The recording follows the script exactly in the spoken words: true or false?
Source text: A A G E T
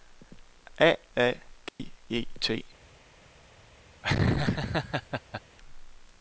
true